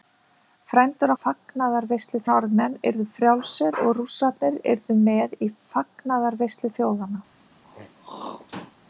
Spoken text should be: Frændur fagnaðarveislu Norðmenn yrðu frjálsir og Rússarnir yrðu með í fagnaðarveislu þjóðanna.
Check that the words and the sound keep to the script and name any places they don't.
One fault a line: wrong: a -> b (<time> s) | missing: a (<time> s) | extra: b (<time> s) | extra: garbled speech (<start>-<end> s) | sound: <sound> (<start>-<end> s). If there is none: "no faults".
sound: throat clearing (7.6-8.7 s)